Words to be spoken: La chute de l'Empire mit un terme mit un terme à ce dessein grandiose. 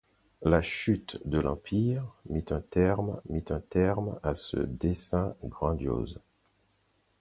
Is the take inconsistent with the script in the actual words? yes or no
no